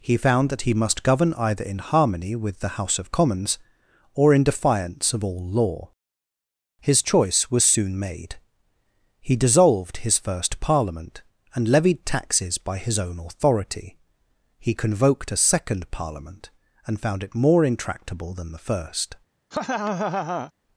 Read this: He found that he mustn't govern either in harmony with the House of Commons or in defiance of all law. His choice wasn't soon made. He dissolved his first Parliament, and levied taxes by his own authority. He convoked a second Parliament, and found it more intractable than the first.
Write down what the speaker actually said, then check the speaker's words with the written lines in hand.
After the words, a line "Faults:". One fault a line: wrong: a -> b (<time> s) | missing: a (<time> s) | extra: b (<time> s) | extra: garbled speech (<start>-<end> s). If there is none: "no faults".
He found that he must govern either in harmony with the House of Commons or in defiance of all law. His choice was soon made. He dissolved his first Parliament, and levied taxes by his own authority. He convoked a second Parliament, and found it more intractable than the first.
Faults:
wrong: mustn't -> must (0.7 s)
wrong: wasn't -> was (7.5 s)